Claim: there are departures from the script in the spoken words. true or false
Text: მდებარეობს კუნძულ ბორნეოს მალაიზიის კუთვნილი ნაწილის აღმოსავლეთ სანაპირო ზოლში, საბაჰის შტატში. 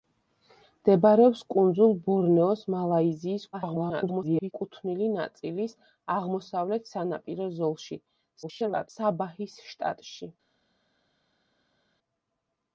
true